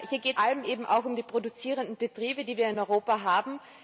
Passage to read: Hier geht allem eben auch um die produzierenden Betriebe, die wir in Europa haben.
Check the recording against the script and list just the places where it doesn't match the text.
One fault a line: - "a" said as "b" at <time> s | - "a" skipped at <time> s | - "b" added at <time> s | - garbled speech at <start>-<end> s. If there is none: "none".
none